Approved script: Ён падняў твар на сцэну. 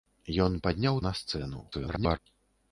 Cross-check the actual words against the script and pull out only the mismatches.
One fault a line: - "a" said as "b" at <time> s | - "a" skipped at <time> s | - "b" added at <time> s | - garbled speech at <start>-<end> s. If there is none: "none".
- "твар" skipped at 1.0 s
- garbled speech at 1.7-2.2 s